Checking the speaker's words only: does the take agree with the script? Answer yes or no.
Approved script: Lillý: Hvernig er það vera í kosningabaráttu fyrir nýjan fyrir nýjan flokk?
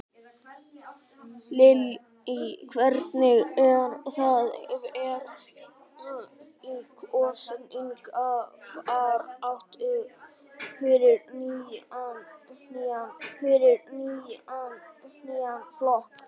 yes